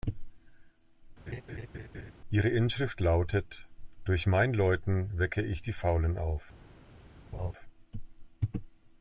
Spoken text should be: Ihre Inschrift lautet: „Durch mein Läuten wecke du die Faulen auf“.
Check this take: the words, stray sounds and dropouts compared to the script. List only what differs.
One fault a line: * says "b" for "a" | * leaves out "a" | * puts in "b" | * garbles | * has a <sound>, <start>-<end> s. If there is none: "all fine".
* has a laugh, 1.3-2.1 s
* says "ich" for "du"
* has a laugh, 7.3-7.5 s